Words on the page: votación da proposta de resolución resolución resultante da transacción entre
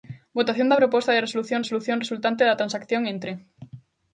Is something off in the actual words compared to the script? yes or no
no